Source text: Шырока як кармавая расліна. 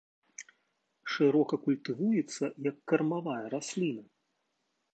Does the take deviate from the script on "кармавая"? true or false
false